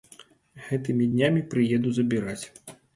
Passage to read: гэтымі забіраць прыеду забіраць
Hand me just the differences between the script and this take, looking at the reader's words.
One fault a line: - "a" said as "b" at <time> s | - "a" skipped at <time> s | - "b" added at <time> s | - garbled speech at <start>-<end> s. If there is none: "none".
- "забіраць" said as "днямі" at 1.1 s